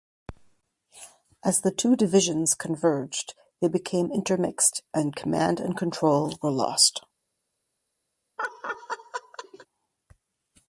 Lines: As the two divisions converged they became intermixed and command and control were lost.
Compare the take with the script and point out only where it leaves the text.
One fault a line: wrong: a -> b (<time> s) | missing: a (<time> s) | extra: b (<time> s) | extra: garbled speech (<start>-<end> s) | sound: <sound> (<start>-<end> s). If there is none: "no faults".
sound: laugh (8.4-9.7 s)